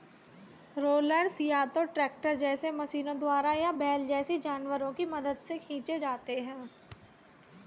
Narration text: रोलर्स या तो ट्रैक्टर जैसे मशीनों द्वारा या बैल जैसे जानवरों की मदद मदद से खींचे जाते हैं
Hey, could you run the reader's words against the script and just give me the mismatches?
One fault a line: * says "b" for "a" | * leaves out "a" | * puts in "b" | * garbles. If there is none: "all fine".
* leaves out "मदद"